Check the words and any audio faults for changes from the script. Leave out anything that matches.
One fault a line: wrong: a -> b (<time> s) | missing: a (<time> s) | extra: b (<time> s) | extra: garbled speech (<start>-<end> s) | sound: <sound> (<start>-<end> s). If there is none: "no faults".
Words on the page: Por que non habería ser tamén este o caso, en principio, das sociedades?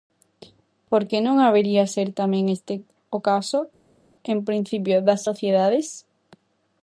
no faults